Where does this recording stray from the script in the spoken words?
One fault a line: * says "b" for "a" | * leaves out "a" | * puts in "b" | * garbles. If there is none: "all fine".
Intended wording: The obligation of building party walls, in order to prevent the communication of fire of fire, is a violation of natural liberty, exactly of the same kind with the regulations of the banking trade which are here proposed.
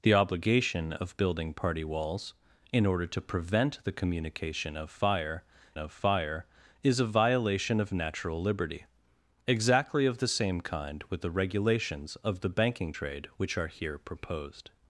all fine